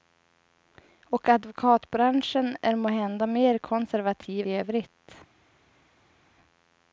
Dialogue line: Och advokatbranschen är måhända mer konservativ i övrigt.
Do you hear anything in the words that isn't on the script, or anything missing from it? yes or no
no